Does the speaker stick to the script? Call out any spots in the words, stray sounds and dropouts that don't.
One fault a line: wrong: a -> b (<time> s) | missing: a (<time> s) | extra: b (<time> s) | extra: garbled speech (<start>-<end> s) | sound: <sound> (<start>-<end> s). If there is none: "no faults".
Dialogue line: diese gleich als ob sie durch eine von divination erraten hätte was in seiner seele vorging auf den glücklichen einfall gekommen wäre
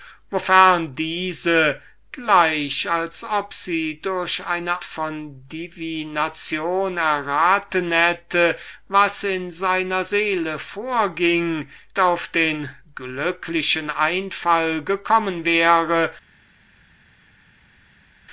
no faults